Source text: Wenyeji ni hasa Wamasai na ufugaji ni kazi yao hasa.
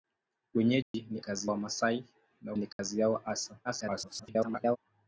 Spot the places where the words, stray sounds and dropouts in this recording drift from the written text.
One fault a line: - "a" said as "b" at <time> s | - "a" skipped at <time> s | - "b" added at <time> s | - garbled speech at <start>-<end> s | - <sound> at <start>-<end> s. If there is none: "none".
- dropout at 0.8-0.9 s
- "hasa" said as "kazi" at 1.2 s
- "ufugaji" skipped at 2.5 s
- dropout at 2.7-2.8 s
- garbled speech at 3.6-4.8 s